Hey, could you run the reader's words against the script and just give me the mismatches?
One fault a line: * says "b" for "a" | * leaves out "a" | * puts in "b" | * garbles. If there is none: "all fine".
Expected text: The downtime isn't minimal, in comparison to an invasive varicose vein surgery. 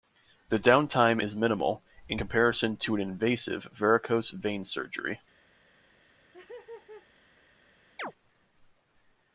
* says "is" for "isn't"